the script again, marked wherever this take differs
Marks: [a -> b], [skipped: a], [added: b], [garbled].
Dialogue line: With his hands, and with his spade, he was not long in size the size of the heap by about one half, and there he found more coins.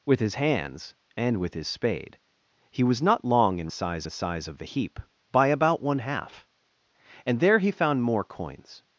With his hands, and with his spade, he was not long in size the size of the heap by about one half, and there he found more coins.